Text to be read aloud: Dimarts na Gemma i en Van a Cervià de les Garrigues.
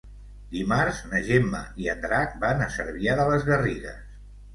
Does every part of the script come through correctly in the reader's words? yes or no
no